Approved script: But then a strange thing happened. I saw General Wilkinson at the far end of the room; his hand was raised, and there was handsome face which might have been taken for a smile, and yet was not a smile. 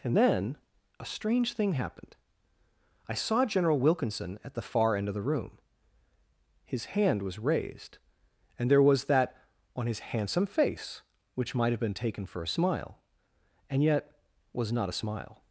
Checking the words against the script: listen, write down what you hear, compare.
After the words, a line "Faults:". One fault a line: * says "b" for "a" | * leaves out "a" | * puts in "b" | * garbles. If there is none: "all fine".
And then a strange thing happened. I saw General Wilkinson at the far end of the room; his hand was raised, and there was that on his handsome face which might have been taken for a smile, and yet was not a smile.
Faults:
* says "And" for "But"
* puts in "that on his"